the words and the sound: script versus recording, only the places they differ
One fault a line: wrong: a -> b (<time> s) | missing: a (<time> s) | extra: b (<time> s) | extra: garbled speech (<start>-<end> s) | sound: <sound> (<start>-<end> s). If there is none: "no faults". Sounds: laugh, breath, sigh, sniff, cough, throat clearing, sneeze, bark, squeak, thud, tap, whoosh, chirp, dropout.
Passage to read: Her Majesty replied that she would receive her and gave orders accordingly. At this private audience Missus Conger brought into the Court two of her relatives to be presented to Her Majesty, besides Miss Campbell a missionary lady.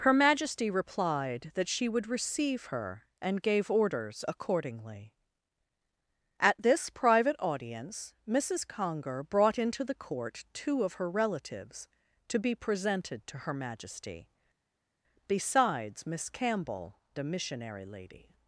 no faults